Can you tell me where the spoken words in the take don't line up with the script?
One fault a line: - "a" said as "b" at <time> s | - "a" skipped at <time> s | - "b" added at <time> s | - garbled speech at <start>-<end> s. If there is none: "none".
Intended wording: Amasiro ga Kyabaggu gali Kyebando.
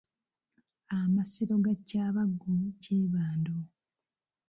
- "gali" skipped at 2.5 s